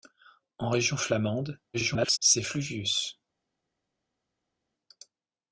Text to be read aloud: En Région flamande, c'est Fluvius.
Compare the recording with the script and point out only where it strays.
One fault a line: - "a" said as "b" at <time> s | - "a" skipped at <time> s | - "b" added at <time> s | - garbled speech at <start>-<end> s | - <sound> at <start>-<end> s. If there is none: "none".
- garbled speech at 1.7-2.2 s